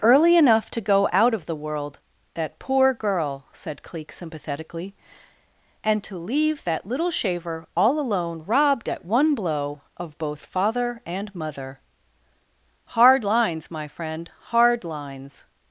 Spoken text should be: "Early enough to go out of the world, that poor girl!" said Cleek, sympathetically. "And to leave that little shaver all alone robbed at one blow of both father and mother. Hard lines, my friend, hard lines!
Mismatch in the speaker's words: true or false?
false